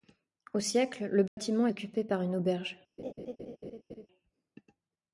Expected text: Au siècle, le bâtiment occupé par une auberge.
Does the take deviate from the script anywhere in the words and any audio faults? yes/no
yes